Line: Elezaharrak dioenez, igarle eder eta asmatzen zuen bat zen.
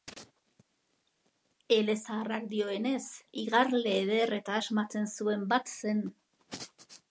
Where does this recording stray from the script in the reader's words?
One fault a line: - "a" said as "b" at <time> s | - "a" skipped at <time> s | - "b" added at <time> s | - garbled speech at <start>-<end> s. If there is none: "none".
none